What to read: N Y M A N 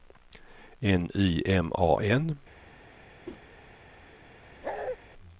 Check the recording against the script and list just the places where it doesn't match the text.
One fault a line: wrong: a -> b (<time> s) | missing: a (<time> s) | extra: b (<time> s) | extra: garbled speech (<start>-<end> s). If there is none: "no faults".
no faults